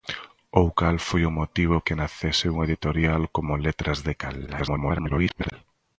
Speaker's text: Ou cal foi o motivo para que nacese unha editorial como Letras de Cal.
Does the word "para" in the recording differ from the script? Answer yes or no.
yes